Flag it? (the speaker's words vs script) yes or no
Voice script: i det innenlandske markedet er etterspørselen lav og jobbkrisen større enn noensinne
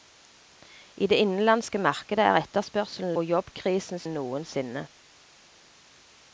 yes